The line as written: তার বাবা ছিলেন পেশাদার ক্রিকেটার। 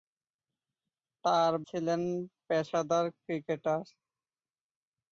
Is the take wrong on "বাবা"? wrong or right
wrong